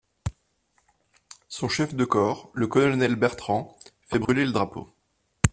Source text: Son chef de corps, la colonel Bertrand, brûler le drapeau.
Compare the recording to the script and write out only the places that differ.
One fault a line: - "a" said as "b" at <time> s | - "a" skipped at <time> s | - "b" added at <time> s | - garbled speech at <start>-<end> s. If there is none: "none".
- "la" said as "le" at 2.5 s
- "fait" added at 4.0 s